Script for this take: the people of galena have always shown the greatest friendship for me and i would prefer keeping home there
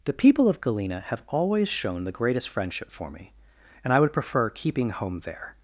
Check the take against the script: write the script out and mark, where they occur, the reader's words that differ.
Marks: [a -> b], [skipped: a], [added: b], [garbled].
the people of galena have always shown the greatest friendship for me and i would prefer keeping home there